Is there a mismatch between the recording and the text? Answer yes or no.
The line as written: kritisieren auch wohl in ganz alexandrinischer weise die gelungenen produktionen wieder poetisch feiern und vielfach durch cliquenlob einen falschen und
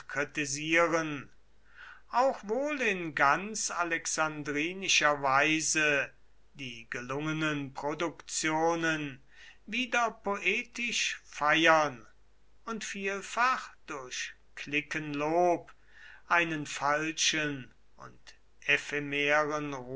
no